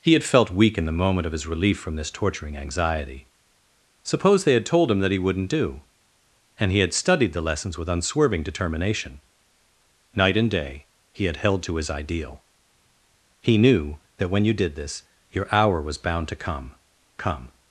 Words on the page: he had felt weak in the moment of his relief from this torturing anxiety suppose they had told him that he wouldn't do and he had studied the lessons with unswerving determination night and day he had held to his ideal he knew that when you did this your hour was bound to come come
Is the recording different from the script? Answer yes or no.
no